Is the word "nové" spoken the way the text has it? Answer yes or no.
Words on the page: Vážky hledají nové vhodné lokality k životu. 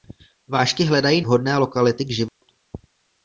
no